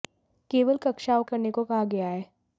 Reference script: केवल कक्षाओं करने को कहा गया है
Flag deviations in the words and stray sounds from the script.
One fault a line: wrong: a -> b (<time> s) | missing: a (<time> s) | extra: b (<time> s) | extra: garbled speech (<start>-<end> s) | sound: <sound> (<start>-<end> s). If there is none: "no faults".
no faults